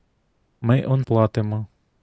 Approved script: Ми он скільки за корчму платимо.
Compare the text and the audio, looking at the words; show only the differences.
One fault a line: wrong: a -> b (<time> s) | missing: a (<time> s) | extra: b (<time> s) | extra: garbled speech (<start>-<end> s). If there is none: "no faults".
missing: скільки за корчму (1.1 s)